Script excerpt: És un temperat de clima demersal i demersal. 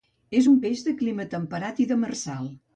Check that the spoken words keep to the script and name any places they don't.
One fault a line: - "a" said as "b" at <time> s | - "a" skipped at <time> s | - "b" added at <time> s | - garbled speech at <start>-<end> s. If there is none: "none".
- "temperat" said as "peix" at 0.6 s
- "demersal" said as "temperat" at 1.4 s